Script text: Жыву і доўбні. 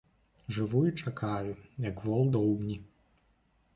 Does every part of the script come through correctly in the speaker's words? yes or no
no